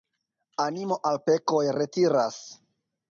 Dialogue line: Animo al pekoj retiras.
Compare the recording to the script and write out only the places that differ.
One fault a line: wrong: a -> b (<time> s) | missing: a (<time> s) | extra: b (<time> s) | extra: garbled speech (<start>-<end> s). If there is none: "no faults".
no faults